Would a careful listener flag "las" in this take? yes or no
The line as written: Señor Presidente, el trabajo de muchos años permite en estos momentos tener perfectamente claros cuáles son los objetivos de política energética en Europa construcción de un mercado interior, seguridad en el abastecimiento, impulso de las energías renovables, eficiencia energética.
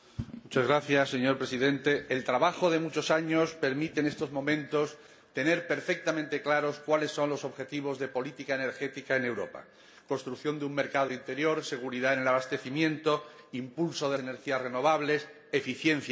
yes